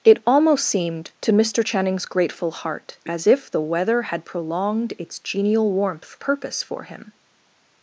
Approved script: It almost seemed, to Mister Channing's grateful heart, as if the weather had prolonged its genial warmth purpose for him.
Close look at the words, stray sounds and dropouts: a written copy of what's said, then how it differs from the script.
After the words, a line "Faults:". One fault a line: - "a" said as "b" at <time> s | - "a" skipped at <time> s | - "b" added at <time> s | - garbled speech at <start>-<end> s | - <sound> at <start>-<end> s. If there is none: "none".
It almost seemed, to Mister Channing's grateful heart, as if the weather had prolonged its genial warmth purpose for him.
Faults:
none